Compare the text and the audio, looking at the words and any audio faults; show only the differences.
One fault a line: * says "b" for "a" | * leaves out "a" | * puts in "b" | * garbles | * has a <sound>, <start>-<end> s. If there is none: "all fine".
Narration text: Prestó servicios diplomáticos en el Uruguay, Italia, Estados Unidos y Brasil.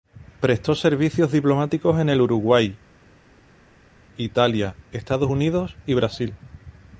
all fine